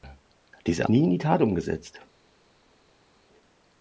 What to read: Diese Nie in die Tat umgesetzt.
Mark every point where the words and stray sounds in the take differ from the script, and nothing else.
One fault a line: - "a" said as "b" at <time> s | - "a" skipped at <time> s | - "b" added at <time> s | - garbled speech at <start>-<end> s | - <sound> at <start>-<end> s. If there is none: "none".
none